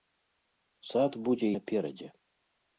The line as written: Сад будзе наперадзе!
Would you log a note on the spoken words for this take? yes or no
no